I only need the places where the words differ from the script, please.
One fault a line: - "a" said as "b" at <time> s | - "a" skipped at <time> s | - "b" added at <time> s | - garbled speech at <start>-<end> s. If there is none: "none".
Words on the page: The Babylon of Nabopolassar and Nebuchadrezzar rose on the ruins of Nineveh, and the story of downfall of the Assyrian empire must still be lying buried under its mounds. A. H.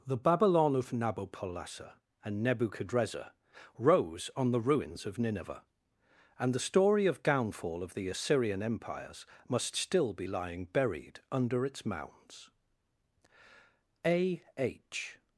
- "empire" said as "empires" at 8.6 s